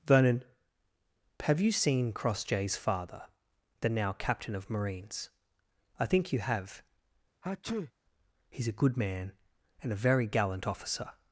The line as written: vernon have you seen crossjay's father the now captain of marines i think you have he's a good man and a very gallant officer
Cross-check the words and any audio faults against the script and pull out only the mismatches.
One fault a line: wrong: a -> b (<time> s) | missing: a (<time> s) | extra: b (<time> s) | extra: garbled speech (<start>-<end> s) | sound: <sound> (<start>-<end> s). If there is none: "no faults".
sound: sneeze (7.4-7.9 s)